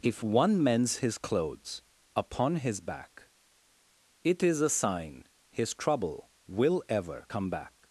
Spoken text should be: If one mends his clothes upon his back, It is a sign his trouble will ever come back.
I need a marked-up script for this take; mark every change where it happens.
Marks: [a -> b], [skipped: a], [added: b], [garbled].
If one mends his clothes upon his back, It is a sign his trouble will ever come back.